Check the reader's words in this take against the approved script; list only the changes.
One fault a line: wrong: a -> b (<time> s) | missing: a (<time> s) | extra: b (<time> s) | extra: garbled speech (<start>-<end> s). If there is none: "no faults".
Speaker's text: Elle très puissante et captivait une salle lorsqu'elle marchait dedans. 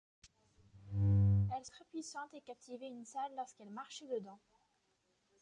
no faults